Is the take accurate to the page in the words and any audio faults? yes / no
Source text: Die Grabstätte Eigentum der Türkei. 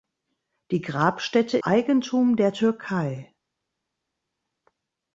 yes